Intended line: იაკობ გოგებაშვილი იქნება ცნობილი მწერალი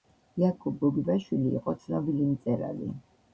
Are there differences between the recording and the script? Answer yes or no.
yes